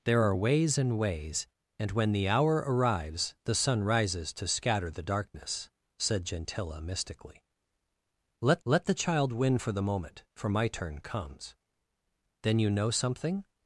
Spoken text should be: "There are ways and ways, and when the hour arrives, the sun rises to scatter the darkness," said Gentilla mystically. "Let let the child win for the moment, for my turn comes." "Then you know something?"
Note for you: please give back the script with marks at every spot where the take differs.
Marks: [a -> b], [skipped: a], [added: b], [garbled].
"There are ways and ways, and when the hour arrives, the sun rises to scatter the darkness," said Gentilla mystically. "Let let the child win for the moment, for my turn comes." "Then you know something?"